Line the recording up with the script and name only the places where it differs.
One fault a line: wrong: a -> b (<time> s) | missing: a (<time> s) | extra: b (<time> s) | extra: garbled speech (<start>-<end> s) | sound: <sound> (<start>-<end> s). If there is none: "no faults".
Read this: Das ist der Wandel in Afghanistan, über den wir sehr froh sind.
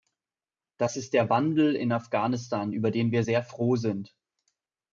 no faults